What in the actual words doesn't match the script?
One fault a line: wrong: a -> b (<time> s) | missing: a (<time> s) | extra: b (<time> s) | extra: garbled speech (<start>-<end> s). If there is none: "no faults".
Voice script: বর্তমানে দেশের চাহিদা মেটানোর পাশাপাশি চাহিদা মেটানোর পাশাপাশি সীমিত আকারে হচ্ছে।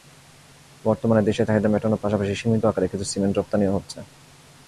wrong: চাহিদা মেটানোর পাশাপাশি সীমিত আকারে -> সীমিত আকারে কিছু সিমেন্ট রপ্তানিও (2.3 s)